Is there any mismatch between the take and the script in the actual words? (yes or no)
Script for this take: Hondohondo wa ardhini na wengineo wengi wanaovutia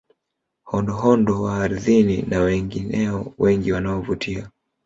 no